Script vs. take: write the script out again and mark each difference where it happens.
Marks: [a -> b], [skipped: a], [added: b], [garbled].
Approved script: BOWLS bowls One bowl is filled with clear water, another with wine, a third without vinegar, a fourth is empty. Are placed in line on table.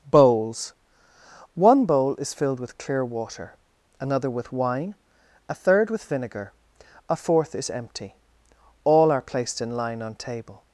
BOWLS [skipped: bowls] One bowl is filled with clear water, another with wine, a third [without -> with] vinegar, a fourth is empty. [added: All] Are placed in line on table.